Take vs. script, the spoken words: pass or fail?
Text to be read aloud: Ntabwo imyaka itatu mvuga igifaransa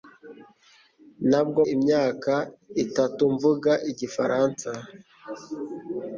pass